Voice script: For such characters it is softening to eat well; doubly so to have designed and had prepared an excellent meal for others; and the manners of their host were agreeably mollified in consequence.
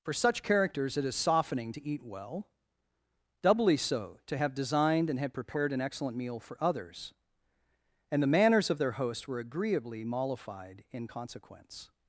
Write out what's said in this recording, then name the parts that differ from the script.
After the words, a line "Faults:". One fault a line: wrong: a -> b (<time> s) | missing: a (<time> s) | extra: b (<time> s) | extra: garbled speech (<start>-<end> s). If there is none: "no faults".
For such characters it is softening to eat well; doubly so to have designed and had prepared an excellent meal for others; and the manners of their host were agreeably mollified in consequence.
Faults:
no faults